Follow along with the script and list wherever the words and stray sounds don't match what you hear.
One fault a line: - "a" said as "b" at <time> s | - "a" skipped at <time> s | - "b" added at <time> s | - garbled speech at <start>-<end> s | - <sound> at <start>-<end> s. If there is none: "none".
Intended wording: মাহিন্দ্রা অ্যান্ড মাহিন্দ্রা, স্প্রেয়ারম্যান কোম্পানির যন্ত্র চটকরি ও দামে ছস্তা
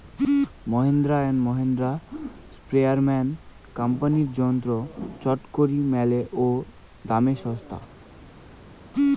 - "মেলে" added at 5.9 s